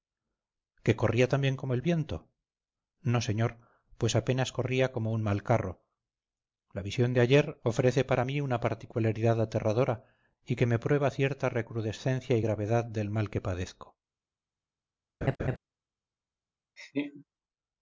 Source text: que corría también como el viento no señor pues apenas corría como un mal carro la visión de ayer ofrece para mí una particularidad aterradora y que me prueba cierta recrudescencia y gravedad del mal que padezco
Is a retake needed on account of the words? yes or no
no